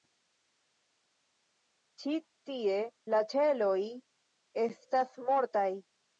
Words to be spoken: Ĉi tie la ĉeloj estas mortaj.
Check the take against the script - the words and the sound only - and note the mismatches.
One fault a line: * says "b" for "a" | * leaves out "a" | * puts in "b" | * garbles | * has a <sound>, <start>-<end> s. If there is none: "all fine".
all fine